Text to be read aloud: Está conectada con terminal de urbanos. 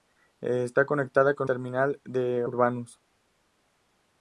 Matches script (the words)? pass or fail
pass